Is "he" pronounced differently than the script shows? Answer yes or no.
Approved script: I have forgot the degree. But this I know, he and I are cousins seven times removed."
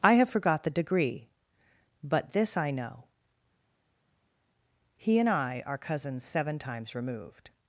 no